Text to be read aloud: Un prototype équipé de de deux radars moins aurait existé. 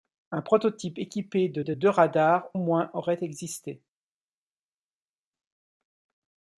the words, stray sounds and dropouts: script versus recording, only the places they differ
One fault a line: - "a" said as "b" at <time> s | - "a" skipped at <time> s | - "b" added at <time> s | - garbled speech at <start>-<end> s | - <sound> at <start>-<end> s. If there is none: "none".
none